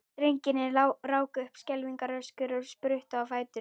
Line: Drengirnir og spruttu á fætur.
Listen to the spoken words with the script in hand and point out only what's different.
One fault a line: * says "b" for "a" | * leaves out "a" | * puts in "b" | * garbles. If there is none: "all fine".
* puts in "ráku upp skelfingaröskur"